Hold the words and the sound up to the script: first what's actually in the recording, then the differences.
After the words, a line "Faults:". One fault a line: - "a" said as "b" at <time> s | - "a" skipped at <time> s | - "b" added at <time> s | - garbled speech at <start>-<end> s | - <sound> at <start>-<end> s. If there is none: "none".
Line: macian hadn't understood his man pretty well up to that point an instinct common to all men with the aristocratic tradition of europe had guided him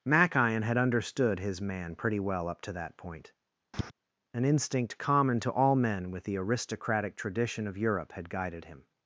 macian had understood his man pretty well up to that point an instinct common to all men with the aristocratic tradition of europe had guided him
Faults:
- "hadn't" said as "had" at 0.6 s
- tap at 3.7-3.9 s